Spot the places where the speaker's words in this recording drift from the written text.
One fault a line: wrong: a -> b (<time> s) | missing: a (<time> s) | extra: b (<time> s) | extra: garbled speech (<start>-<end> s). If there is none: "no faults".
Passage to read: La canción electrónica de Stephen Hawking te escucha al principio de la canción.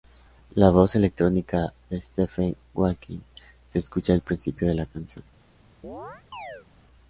wrong: canción -> voz (0.7 s)
wrong: te -> se (3.7 s)